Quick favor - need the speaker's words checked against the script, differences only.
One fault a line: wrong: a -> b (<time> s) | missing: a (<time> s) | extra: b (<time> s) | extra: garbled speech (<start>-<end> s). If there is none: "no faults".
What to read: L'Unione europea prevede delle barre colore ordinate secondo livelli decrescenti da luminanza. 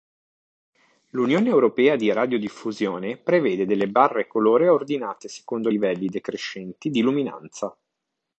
extra: di radiodiffusione (1.9 s)
wrong: da -> di (6.9 s)